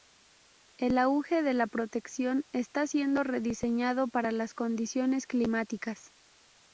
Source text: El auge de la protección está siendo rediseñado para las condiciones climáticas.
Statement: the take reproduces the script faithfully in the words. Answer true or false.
true